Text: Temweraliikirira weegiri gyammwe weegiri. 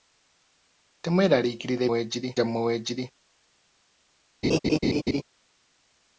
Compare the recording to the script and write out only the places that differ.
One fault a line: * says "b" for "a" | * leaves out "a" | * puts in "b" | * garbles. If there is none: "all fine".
all fine